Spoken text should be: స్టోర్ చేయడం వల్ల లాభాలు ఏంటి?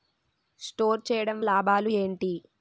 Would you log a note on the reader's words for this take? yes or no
yes